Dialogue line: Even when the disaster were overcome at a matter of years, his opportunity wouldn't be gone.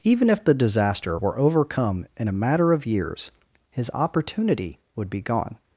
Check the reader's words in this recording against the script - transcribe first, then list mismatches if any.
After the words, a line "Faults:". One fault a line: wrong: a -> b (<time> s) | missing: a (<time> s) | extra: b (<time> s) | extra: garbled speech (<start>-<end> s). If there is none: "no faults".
Even if the disaster were overcome in a matter of years, his opportunity would be gone.
Faults:
wrong: when -> if (0.3 s)
wrong: at -> in (2.2 s)
wrong: wouldn't -> would (5.0 s)